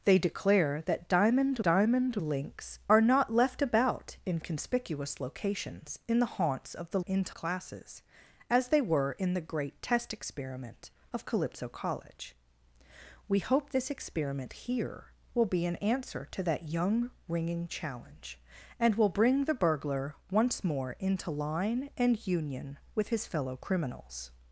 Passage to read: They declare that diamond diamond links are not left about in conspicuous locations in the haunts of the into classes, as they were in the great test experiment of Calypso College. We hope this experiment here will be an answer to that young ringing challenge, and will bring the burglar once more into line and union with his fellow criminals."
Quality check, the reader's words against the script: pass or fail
pass